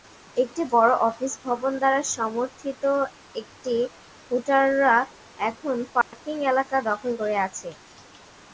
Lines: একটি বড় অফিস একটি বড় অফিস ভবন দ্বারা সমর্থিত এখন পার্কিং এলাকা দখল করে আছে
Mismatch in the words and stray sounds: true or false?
true